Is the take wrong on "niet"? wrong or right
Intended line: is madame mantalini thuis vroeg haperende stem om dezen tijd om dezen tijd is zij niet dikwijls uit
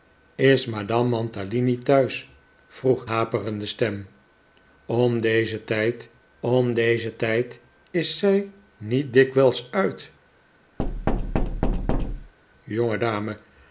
right